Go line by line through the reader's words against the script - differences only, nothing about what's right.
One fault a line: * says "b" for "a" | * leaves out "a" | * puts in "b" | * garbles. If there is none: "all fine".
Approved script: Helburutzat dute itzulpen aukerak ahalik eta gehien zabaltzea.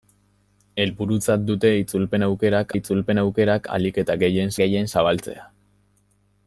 * puts in "itzulpen aukerak"
* puts in "gehien"